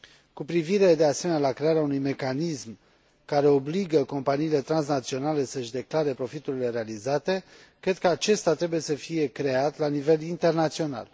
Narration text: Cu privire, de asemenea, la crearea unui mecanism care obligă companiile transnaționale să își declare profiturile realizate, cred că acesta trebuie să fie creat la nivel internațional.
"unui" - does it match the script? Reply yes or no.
yes